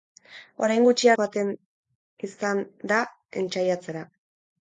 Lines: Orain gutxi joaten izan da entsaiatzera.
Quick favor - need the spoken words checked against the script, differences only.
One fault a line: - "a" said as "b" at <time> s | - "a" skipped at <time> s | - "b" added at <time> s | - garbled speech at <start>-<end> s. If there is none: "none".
none